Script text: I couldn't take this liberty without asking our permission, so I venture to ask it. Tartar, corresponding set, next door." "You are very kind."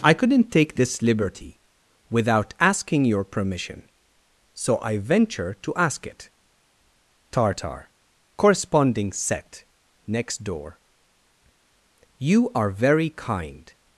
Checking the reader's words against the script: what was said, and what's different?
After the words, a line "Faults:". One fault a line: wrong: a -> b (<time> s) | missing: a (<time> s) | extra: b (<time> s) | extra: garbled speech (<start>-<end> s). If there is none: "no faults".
I couldn't take this liberty without asking your permission, so I venture to ask it. Tartar, corresponding set, next door." "You are very kind."
Faults:
wrong: our -> your (3.0 s)